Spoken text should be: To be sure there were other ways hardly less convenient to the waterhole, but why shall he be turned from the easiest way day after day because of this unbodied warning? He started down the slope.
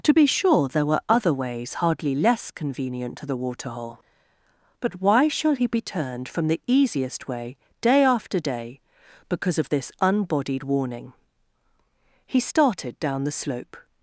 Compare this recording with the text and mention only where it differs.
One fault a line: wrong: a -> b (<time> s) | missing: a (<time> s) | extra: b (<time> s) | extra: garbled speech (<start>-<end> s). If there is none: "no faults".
no faults